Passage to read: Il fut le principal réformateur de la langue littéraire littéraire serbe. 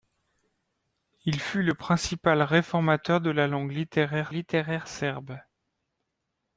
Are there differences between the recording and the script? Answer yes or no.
no